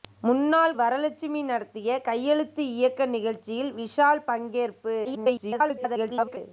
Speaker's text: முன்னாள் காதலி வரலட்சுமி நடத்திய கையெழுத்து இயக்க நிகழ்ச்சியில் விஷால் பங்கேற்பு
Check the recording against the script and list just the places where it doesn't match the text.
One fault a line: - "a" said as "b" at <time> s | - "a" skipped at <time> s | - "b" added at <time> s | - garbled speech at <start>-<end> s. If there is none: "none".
- "காதலி" skipped at 0.7 s
- garbled speech at 5.0-6.4 s